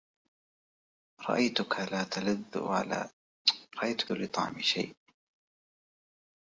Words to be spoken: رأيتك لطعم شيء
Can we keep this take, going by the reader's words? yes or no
yes